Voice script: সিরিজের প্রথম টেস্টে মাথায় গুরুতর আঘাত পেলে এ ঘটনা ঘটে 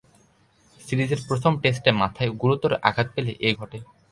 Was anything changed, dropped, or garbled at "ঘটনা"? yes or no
yes